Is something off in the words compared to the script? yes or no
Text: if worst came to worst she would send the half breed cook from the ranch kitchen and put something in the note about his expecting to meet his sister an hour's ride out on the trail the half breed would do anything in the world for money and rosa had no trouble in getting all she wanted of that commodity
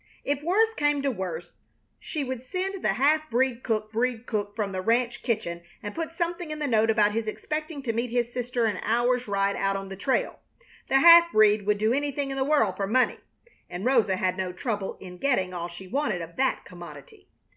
yes